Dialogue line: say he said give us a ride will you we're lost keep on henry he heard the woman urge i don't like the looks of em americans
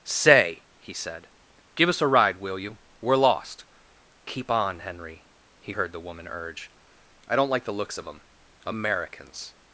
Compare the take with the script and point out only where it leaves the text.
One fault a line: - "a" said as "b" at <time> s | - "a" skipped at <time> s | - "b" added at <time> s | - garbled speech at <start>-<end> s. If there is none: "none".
none